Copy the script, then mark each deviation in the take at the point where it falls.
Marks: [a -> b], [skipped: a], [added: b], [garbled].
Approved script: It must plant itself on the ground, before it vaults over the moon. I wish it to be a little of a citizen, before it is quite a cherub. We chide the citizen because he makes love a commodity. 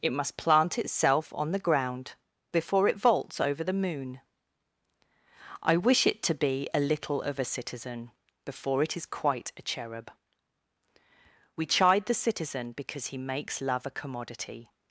It must plant itself on the ground, before it vaults over the moon. I wish it to be a little of a citizen, before it is quite a cherub. We chide the citizen because he makes love a commodity.